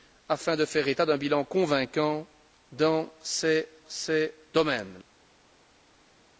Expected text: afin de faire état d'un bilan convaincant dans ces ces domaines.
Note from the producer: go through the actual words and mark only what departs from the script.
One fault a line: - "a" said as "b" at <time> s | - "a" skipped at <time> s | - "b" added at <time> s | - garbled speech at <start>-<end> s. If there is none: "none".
none